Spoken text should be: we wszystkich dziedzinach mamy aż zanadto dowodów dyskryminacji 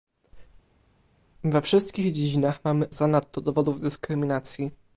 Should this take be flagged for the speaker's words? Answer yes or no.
yes